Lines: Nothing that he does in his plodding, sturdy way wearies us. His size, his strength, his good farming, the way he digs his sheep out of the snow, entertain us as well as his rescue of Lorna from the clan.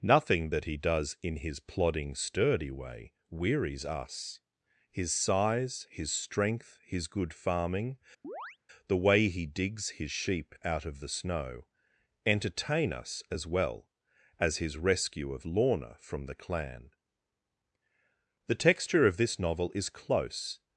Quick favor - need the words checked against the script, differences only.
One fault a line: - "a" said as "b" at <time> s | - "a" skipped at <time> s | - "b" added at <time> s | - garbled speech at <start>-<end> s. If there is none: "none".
- "The texture of this novel is close" added at 18.5 s